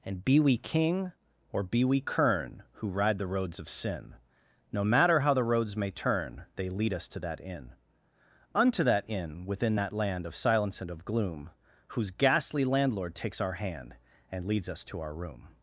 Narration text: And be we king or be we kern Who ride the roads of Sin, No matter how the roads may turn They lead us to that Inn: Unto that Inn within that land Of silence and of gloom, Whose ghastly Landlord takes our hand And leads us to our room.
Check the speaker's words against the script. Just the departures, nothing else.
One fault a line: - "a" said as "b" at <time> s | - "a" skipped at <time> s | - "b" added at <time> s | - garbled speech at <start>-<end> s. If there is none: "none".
none